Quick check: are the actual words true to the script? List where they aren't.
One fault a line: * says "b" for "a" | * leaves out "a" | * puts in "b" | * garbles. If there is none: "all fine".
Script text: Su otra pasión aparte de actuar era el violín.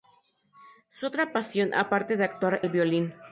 * leaves out "era"